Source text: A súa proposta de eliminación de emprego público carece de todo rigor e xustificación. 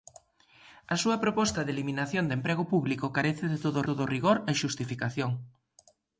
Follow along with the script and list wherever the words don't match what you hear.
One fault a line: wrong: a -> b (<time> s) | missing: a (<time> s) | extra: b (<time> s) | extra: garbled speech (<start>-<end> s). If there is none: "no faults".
extra: todo (3.9 s)